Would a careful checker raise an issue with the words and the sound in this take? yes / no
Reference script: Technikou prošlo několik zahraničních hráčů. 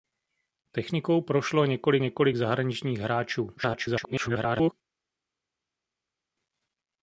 yes